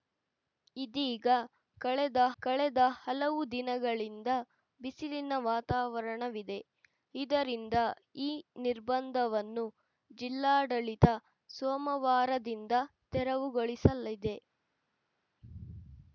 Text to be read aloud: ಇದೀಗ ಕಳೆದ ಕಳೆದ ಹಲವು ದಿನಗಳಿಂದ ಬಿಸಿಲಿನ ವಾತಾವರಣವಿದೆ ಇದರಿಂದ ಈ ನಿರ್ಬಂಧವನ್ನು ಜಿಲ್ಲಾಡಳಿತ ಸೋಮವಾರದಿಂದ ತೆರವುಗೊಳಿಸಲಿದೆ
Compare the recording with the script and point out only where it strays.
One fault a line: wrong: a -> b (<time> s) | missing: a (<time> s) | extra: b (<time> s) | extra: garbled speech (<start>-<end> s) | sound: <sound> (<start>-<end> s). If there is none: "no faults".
no faults